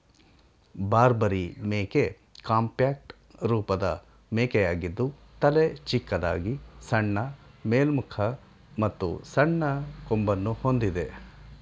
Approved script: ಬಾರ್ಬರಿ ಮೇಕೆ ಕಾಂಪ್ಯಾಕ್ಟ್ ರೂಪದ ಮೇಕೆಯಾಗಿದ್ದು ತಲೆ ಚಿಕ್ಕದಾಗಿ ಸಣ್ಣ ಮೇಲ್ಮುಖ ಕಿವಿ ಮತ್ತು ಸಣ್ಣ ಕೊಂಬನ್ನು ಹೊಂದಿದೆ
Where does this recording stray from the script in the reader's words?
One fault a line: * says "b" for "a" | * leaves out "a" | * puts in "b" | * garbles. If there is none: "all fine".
* leaves out "ಕಿವಿ"